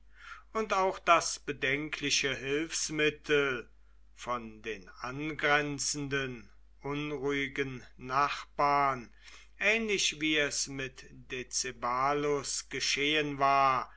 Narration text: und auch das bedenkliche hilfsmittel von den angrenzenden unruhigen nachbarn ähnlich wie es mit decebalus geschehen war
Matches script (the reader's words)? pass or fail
pass